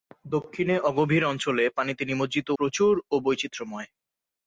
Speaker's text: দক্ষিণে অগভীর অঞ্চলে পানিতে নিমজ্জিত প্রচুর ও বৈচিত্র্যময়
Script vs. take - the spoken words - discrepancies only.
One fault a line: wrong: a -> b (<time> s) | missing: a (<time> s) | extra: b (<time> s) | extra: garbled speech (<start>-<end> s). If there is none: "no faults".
no faults